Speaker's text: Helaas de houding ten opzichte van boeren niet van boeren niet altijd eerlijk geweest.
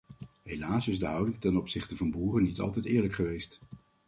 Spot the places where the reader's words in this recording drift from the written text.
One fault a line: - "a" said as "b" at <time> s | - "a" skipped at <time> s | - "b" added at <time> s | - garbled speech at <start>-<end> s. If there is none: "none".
- "is" added at 0.9 s
- "van boeren niet" skipped at 2.6 s